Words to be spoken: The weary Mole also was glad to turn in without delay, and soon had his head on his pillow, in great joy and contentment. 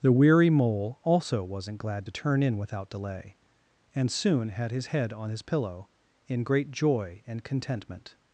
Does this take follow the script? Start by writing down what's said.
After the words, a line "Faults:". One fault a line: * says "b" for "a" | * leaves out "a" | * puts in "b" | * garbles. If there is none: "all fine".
The weary Mole also wasn't glad to turn in without delay, and soon had his head on his pillow, in great joy and contentment.
Faults:
* says "wasn't" for "was"